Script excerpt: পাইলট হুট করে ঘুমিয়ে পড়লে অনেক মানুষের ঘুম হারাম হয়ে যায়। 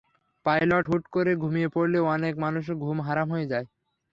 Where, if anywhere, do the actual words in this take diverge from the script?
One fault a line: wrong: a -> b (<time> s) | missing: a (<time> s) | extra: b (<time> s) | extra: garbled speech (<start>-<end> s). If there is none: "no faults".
no faults